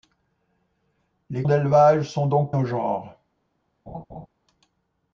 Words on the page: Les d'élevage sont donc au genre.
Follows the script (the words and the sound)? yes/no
no